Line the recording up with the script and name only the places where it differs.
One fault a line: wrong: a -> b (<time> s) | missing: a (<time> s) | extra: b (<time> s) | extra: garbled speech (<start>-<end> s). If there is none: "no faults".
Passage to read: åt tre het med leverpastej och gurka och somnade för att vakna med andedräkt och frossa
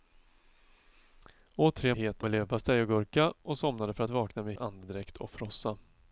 no faults